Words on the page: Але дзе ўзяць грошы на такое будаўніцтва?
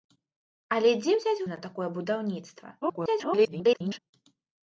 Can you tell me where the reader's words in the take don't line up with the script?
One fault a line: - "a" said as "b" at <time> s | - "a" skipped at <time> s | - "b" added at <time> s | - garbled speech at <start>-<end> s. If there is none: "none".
- "грошы" skipped at 1.4 s
- garbled speech at 2.8-4.0 s